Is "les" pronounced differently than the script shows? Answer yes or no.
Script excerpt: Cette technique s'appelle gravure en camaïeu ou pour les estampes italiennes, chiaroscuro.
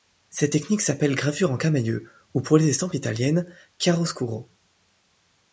no